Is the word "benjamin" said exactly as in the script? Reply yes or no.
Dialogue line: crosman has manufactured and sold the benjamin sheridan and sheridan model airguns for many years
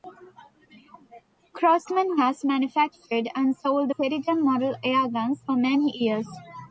no